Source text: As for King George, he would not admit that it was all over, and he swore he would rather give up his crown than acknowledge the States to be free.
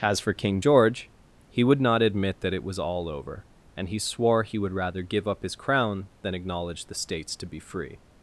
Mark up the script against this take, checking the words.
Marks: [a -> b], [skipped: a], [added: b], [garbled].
As for King George, he would not admit that it was all over, and he swore he would rather give up his crown than acknowledge the States to be free.